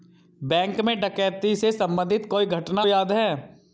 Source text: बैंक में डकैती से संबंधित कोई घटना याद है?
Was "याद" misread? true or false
false